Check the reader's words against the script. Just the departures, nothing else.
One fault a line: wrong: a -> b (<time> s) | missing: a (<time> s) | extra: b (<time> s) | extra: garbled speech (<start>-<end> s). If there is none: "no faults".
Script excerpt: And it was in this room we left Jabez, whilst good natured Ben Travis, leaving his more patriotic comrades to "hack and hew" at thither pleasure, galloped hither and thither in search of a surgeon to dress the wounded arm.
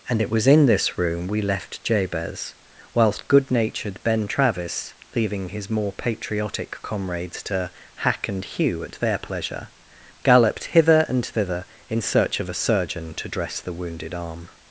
wrong: thither -> their (8.9 s)